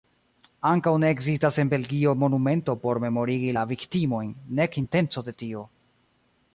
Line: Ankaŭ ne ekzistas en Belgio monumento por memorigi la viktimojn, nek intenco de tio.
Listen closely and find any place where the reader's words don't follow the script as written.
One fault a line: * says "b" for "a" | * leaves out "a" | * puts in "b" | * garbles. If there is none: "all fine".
all fine